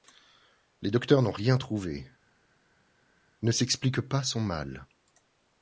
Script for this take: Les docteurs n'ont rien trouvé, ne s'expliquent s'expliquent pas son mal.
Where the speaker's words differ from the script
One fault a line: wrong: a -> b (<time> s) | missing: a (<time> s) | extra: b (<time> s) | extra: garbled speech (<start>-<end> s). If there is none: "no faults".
missing: s'expliquent (4.0 s)